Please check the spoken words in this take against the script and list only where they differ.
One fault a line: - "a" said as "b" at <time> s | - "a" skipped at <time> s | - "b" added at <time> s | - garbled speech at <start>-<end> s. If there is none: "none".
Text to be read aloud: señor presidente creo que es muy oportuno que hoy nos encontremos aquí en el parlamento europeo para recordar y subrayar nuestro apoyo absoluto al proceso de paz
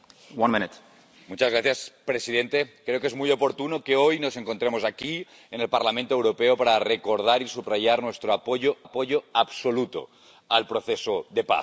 - "apoyo" added at 8.8 s